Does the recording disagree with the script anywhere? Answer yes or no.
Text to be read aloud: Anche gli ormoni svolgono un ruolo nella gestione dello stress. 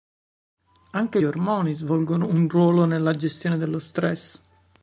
yes